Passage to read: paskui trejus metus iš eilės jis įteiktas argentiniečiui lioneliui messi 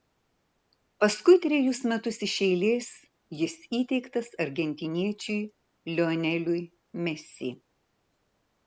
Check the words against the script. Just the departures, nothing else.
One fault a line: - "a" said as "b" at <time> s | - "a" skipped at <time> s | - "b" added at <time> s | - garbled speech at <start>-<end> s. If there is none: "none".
none